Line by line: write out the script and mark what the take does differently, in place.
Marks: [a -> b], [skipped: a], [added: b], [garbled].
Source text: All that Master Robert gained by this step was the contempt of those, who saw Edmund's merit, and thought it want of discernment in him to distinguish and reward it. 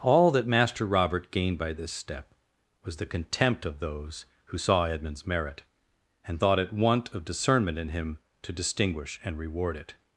All that Master Robert gained by this step was the contempt of those, who saw Edmund's merit, and thought it want of discernment in him to distinguish and reward it.